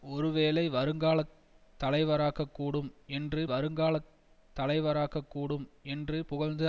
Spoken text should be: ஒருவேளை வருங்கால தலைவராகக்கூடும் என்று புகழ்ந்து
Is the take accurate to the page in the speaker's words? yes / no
no